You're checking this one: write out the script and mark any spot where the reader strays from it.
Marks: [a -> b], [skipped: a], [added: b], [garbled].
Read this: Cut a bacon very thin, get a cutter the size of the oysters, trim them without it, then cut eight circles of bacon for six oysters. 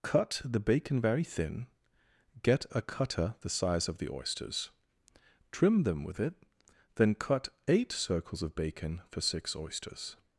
Cut [a -> the] bacon very thin, get a cutter the size of the oysters, trim them [without -> with] it, then cut eight circles of bacon for six oysters.